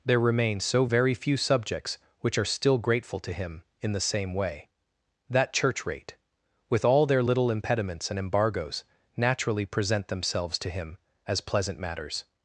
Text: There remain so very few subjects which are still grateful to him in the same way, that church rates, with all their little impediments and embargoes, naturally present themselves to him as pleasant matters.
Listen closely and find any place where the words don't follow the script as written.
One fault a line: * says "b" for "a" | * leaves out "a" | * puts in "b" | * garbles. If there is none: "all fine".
* says "rate" for "rates"